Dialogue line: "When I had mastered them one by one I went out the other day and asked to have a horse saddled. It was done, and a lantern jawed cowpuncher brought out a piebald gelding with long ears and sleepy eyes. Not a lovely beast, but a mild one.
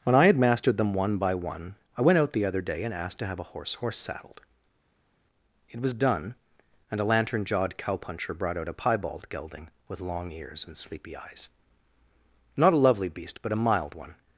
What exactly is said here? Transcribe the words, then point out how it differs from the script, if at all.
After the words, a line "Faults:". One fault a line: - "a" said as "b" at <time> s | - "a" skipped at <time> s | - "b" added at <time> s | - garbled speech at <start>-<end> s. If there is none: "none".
"When I had mastered them one by one I went out the other day and asked to have a horse horse saddled. It was done, and a lantern jawed cowpuncher brought out a piebald gelding with long ears and sleepy eyes. Not a lovely beast, but a mild one.
Faults:
- "horse" added at 3.7 s